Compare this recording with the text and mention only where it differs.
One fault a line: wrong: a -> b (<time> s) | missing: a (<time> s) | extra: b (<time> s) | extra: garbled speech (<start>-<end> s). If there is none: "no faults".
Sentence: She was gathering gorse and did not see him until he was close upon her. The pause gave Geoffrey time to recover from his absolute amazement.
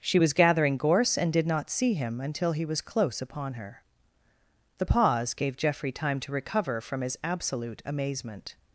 no faults